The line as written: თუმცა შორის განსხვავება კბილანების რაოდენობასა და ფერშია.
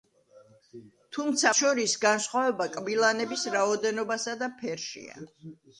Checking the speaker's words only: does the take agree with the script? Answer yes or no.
yes